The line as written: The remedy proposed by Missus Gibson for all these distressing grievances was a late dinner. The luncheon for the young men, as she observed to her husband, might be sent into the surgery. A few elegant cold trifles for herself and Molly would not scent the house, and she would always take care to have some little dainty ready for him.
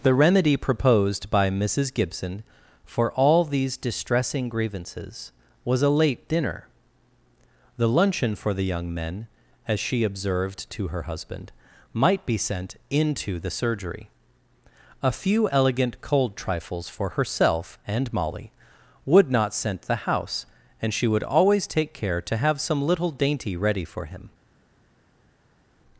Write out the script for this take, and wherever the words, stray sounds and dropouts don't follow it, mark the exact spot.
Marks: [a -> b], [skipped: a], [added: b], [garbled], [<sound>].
The remedy proposed by Missus Gibson for all these distressing grievances was a late dinner. The luncheon for the young men, as she observed to her husband, might be sent into the surgery. A few elegant cold trifles for herself and Molly would not scent the house, and she would always take care to have some little dainty ready for him.